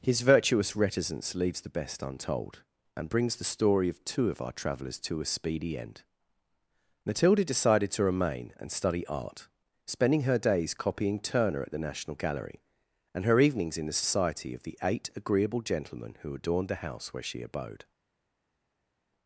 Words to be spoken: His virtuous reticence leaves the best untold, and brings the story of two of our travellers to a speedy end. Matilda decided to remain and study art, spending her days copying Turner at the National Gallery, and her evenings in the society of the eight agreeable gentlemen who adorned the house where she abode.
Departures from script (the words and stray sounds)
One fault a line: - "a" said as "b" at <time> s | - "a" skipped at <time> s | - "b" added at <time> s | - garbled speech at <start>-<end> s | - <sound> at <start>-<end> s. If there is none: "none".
none